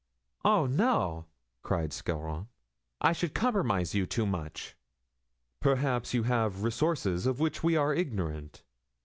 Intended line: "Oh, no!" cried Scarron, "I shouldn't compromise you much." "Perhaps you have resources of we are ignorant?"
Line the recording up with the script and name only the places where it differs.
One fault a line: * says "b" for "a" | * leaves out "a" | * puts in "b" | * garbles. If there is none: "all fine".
* says "should" for "shouldn't"
* puts in "too"
* puts in "which"